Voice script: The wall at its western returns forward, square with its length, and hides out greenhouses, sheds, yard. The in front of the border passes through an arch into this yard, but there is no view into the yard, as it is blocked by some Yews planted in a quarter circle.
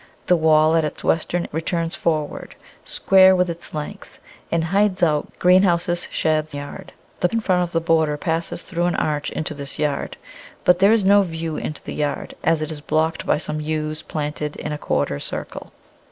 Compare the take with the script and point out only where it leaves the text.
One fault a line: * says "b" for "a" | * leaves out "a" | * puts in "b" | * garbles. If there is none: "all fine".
all fine